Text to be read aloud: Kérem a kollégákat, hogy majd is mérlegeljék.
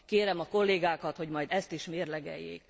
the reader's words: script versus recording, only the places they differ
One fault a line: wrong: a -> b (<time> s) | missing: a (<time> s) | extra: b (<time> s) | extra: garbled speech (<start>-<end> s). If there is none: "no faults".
extra: ezt (1.5 s)